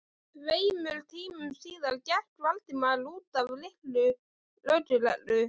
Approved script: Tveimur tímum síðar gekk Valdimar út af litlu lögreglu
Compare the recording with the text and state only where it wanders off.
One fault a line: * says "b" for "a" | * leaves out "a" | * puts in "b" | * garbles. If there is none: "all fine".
all fine